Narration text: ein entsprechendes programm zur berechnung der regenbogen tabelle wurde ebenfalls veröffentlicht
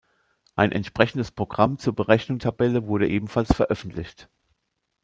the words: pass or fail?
fail